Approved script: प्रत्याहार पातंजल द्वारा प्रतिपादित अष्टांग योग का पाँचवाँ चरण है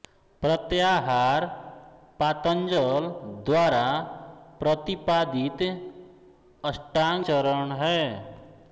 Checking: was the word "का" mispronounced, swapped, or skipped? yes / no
yes